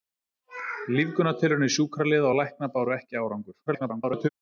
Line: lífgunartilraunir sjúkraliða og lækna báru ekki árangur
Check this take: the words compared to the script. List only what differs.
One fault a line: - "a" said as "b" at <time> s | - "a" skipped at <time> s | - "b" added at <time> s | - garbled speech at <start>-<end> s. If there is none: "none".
- garbled speech at 3.7-4.3 s